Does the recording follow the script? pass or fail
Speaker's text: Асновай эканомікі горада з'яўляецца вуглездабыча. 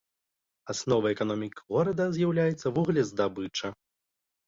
pass